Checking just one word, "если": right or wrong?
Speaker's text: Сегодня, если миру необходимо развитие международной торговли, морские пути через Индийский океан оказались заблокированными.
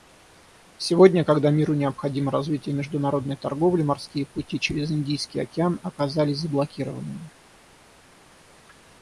wrong